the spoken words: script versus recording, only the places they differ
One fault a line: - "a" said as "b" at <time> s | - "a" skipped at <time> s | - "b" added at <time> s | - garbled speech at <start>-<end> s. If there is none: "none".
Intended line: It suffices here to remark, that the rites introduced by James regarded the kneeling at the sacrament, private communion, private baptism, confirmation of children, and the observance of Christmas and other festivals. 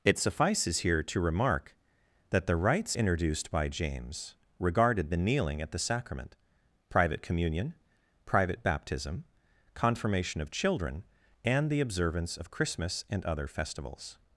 none